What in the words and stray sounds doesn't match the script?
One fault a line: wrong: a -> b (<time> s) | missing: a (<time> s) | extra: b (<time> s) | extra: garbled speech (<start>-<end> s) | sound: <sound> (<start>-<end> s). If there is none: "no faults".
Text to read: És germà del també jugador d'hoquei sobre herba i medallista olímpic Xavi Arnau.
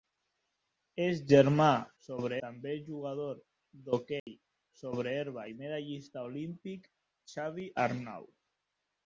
wrong: del -> sobre (2.0 s)
sound: dropout (4.2-4.3 s)